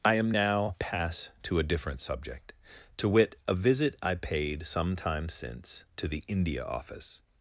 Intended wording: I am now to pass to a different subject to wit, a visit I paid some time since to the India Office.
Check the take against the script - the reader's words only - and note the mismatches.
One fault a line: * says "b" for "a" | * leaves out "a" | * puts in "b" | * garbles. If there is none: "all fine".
* leaves out "to"